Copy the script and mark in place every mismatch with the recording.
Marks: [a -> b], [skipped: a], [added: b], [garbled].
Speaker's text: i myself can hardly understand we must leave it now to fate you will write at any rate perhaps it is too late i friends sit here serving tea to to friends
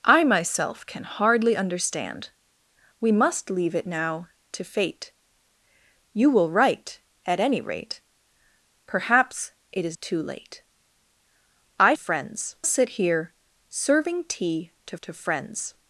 i myself can hardly understand we must leave it now to fate you will write at any rate perhaps it is too late i friends sit here serving tea to to friends